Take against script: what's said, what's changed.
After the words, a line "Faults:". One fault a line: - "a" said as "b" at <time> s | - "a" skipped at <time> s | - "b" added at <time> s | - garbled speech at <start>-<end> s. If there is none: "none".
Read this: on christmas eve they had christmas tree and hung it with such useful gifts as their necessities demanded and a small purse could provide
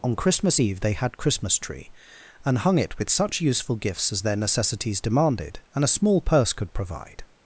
on christmas eve they had christmas tree and hung it with such useful gifts as their necessities demanded and a small purse could provide
Faults:
none